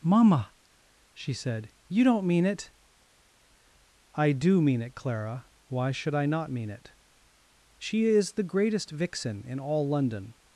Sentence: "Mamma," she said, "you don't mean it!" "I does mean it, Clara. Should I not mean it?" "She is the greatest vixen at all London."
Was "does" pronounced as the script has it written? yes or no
no